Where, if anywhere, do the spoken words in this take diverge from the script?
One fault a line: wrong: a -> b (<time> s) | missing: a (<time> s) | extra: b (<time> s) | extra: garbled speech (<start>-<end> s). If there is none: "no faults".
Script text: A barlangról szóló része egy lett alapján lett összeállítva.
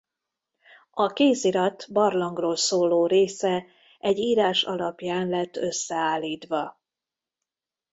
extra: kézirat (1.1 s)
wrong: lett -> írás (4.2 s)